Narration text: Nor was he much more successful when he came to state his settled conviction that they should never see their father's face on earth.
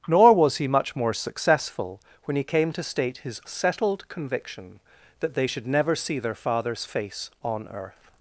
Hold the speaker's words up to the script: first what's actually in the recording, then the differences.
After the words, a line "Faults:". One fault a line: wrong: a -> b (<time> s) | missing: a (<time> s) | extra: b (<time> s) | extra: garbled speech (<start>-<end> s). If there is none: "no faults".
Nor was he much more successful when he came to state his settled conviction that they should never see their father's face on earth.
Faults:
no faults